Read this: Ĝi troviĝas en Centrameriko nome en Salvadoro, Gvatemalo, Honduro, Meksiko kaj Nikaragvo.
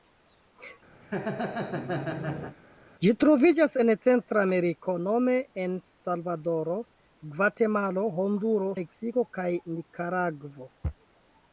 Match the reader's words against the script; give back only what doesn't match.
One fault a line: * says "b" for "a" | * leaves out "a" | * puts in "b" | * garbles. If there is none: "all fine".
all fine